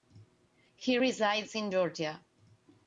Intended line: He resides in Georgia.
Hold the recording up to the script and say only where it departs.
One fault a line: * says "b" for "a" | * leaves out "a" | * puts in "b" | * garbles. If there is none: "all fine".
all fine